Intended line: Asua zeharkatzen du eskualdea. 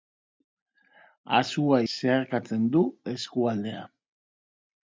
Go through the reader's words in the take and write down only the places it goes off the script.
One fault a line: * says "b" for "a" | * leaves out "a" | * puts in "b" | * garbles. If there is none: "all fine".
all fine